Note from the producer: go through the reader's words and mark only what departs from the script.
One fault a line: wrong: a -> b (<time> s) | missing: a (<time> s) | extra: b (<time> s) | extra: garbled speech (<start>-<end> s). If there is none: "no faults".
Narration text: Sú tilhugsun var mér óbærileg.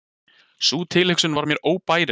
no faults